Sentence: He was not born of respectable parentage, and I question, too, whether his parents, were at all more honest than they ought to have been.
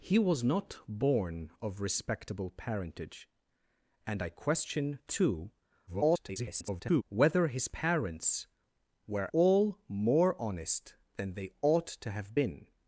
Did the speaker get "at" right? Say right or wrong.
wrong